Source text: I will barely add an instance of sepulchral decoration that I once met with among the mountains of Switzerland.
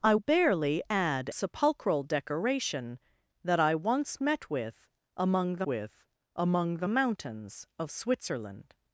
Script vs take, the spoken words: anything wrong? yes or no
yes